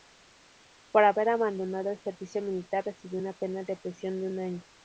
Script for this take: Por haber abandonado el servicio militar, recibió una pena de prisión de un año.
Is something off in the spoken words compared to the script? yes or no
no